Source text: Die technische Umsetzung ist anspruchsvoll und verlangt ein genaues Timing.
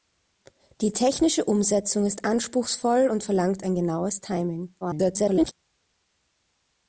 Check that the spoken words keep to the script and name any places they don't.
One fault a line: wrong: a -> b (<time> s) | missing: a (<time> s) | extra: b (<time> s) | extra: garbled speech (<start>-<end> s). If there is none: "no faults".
extra: garbled speech (4.8-5.5 s)